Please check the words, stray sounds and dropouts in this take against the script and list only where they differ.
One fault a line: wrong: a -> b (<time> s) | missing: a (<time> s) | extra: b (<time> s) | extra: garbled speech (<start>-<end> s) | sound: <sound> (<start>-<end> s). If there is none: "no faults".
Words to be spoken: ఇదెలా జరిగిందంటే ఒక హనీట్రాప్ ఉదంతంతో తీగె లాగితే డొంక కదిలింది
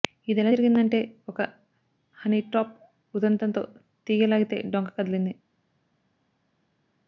no faults